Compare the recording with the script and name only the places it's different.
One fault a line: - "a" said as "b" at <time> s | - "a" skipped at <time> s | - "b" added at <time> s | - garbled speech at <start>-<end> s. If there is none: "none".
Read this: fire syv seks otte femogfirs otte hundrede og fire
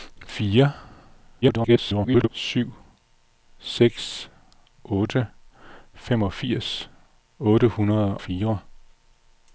- garbled speech at 1.4-2.3 s
- "og" skipped at 8.2 s